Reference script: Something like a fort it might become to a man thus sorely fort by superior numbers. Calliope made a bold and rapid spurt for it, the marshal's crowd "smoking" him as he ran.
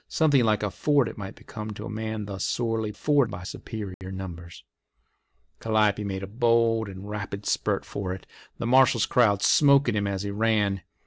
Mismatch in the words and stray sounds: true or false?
true